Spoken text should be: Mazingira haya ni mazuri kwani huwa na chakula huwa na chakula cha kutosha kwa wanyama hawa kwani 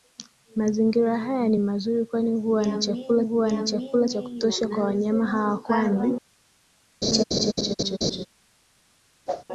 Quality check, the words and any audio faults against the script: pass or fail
fail